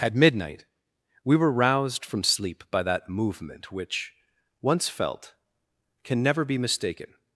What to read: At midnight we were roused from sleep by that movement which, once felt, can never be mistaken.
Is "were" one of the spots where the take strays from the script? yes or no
no